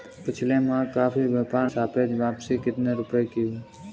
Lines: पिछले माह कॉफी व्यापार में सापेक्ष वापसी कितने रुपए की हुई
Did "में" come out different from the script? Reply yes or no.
yes